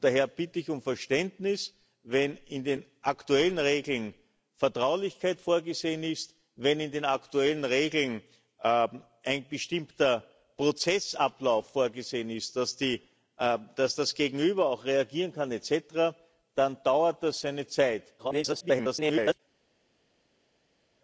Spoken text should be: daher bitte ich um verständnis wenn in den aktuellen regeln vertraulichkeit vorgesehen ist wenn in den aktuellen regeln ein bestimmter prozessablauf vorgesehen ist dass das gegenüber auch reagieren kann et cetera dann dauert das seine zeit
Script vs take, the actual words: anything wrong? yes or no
yes